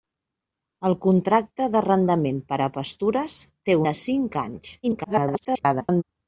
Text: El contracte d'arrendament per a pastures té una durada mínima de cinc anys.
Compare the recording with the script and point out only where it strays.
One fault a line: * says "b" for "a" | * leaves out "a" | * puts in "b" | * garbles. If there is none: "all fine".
* leaves out "una durada mínima"
* garbles